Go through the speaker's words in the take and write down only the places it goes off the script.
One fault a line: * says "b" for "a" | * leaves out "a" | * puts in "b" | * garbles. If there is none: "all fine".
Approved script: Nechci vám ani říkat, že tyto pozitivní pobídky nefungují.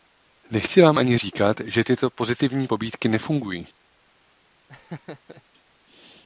all fine